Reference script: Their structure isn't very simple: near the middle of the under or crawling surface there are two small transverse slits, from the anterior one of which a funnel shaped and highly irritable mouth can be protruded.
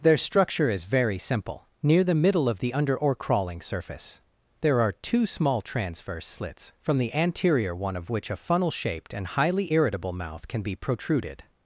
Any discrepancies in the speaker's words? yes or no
yes